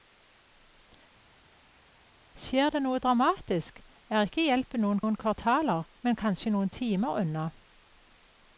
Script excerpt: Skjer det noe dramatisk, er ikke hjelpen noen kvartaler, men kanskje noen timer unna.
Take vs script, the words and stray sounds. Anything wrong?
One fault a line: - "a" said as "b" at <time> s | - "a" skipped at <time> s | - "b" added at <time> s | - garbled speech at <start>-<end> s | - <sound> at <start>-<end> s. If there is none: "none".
- "noen" added at 5.0 s